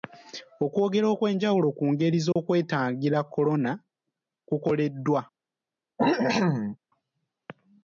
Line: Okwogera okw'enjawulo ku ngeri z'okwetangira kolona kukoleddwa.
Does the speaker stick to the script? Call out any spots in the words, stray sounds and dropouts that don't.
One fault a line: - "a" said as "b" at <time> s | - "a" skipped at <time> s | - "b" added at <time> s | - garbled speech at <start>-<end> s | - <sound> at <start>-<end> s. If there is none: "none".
- dropout at 2.3-2.4 s
- cough at 6.0-6.8 s